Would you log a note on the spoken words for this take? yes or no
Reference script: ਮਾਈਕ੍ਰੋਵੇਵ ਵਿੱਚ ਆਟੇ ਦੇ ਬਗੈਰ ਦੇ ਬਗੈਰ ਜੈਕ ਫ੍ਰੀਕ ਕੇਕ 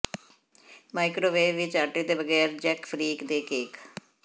yes